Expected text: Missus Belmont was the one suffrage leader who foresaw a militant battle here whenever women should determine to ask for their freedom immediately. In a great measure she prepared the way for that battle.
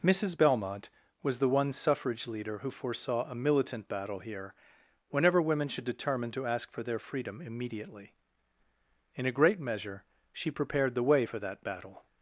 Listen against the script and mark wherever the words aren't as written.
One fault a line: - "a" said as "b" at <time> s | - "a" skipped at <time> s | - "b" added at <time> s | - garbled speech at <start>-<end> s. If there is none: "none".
none